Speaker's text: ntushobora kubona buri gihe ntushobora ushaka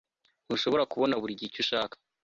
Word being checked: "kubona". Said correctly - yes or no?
yes